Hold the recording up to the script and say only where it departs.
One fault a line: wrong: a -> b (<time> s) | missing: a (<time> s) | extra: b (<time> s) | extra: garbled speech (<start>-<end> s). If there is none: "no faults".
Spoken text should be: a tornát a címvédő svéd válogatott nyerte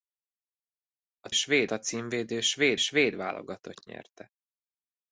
wrong: tornát -> svéd (1.3 s)
extra: svéd (2.8 s)